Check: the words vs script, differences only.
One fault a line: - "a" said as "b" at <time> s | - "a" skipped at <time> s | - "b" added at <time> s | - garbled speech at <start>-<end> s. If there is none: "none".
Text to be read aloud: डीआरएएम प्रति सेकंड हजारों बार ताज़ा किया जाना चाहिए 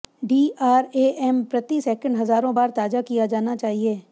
none